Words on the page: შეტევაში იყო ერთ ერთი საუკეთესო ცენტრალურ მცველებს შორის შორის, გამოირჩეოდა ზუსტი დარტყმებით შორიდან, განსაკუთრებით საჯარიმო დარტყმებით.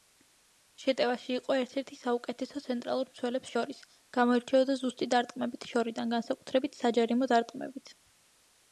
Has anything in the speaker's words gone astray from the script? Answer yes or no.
yes